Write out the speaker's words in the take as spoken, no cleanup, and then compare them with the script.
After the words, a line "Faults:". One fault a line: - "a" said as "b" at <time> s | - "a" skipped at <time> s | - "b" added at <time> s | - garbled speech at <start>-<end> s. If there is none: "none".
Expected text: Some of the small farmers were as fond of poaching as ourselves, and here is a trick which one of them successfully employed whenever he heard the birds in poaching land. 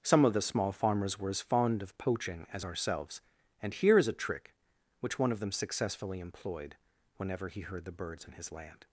Some of the small farmers were as fond of poaching as ourselves, and here is a trick which one of them successfully employed whenever he heard the birds in his land.
Faults:
- "poaching" said as "his" at 8.3 s